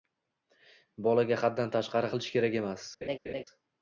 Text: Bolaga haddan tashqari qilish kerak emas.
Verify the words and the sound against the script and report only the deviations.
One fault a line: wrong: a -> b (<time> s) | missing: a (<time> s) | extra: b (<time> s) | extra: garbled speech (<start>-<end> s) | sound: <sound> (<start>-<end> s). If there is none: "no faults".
sound: laugh (3.0-3.4 s)